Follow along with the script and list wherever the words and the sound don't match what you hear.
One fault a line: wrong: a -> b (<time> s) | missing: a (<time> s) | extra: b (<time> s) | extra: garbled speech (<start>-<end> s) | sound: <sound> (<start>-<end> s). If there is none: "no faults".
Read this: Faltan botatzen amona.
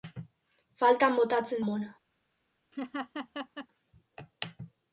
sound: laugh (2.7-3.7 s)